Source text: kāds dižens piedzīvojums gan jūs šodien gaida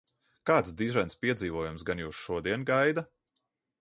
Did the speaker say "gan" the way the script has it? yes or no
yes